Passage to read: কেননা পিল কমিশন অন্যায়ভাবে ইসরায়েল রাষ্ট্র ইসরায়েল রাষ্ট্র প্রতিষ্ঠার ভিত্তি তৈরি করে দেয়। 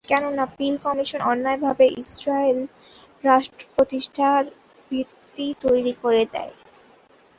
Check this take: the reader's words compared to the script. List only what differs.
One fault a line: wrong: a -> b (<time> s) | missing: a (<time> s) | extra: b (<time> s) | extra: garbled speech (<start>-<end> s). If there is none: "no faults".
missing: ইসরায়েল রাষ্ট্র (3.6 s)